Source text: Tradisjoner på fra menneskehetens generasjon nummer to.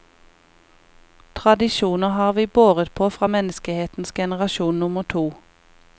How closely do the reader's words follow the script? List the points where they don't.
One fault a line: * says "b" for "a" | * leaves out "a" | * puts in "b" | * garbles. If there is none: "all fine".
* puts in "har vi båret"